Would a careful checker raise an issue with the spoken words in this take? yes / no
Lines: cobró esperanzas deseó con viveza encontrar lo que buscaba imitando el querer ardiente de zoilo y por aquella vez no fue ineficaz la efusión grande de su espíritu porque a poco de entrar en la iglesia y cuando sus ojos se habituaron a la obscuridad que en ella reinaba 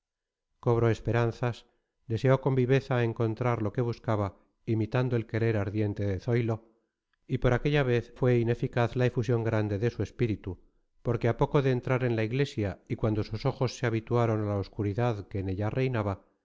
yes